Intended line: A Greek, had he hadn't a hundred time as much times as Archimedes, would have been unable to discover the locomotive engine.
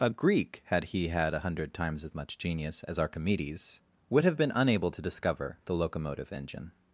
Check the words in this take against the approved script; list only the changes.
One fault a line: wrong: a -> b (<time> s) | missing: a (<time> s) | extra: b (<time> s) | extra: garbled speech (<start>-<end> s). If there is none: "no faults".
wrong: hadn't -> had (1.1 s)
wrong: time -> times (1.7 s)
wrong: times -> genius (2.4 s)